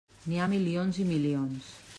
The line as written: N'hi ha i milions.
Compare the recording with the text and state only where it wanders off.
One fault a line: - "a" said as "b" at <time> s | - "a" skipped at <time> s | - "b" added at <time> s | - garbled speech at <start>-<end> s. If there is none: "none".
- "milions" added at 0.5 s